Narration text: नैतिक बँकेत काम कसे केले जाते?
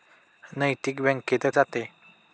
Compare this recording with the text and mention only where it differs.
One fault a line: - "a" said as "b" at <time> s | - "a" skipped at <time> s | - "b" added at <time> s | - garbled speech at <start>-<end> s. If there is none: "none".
- "काम कसे केले" skipped at 1.4 s